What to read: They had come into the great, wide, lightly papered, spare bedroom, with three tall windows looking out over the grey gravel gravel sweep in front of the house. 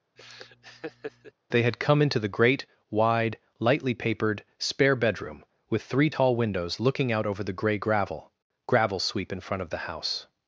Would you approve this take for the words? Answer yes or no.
yes